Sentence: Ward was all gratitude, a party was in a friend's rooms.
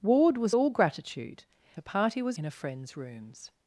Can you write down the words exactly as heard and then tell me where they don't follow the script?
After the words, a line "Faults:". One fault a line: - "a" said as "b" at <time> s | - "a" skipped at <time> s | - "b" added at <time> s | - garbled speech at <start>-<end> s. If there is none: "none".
Ward was all gratitude, a party was in a friend's rooms.
Faults:
none